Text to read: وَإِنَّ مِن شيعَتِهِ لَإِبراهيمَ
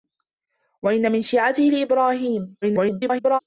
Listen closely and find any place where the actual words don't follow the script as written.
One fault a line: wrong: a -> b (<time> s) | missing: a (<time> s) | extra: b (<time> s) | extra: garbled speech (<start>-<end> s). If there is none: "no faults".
extra: garbled speech (2.6-3.4 s)